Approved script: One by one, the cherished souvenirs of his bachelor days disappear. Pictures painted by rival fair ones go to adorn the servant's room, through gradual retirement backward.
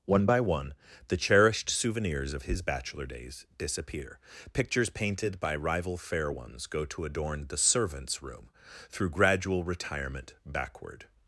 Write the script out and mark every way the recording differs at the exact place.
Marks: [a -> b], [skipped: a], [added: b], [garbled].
One by one, the cherished souvenirs of his bachelor days disappear. Pictures painted by rival fair ones go to adorn the servant's room, through gradual retirement backward.